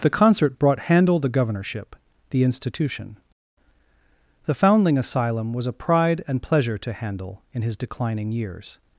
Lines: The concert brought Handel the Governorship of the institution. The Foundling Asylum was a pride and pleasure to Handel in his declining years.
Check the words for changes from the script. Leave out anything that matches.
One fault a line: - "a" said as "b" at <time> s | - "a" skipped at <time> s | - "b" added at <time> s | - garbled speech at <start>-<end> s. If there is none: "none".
- "of" skipped at 1.9 s